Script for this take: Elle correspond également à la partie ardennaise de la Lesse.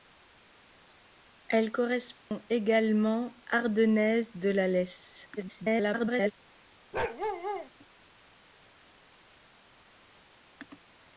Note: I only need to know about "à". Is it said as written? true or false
false